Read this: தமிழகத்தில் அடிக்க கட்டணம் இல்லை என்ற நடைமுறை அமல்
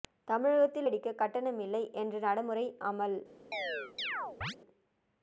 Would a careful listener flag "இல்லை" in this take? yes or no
no